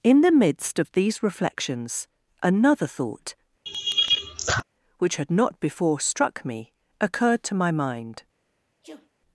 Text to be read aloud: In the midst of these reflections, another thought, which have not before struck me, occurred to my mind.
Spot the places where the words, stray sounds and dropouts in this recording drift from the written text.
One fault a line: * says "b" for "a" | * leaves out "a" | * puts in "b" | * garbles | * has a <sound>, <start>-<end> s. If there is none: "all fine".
* has a laugh, 3.7-4.6 s
* says "had" for "have"
* has a sneeze, 8.8-9.1 s